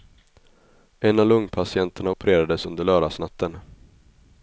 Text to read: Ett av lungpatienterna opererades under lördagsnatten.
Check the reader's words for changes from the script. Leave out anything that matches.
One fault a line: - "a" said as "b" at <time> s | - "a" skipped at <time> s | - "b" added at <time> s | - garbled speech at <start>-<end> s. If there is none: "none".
- "Ett" said as "En" at 1.0 s